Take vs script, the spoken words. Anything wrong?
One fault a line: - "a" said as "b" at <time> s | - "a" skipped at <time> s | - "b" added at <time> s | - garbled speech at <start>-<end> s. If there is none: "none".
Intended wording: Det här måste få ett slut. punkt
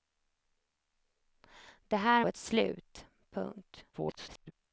- "måste få" skipped at 2.2 s
- garbled speech at 3.9-4.5 s